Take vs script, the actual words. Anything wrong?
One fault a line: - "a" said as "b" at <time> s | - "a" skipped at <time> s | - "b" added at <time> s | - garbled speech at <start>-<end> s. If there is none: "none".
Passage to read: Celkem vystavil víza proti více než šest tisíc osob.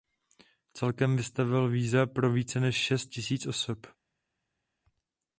- "proti" said as "pro" at 2.0 s